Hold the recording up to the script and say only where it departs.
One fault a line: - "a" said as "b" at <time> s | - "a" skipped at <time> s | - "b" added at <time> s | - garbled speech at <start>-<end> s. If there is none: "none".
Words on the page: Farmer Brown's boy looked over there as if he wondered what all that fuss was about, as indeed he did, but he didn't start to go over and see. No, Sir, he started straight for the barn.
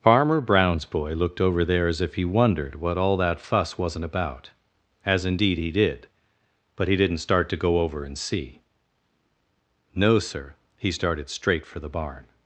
- "was" said as "wasn't" at 3.8 s